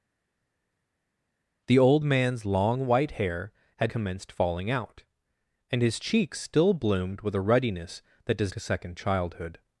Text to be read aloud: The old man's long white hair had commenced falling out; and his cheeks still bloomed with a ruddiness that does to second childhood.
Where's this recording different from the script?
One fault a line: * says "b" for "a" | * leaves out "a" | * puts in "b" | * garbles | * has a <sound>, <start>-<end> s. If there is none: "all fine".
all fine